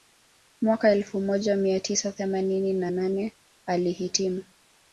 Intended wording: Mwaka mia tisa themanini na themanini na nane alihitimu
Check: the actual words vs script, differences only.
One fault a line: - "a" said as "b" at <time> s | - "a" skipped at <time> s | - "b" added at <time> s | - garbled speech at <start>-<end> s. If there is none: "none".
- "elfu moja" added at 0.9 s
- "themanini na" skipped at 2.9 s